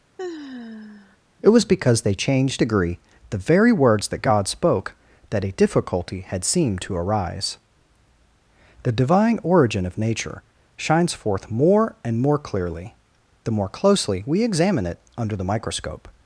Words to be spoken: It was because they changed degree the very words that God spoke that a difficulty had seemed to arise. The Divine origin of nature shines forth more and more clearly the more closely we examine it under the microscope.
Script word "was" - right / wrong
right